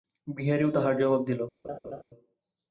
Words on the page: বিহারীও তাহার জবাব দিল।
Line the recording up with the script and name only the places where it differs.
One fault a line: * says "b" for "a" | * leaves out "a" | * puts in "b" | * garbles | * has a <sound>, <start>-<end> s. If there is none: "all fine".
* has a laugh, 1.6-2.0 s